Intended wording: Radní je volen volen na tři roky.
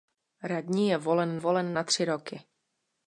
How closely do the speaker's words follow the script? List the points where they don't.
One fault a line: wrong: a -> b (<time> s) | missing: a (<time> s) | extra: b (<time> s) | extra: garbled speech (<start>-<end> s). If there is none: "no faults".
no faults